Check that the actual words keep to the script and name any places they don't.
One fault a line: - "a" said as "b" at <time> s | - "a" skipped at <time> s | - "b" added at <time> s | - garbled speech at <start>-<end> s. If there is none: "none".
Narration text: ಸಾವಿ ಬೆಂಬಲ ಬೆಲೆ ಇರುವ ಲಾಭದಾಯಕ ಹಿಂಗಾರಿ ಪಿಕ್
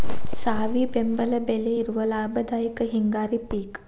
none